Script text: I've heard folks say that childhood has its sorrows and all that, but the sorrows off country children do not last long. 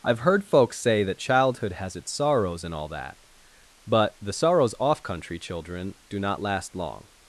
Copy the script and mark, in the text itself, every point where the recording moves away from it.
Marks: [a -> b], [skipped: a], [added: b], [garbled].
I've heard folks say that childhood has its sorrows and all that, but the sorrows off country children do not last long.